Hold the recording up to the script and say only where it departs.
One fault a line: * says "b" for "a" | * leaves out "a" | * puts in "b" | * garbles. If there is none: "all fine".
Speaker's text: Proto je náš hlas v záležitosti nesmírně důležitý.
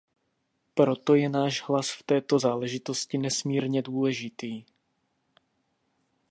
* puts in "této"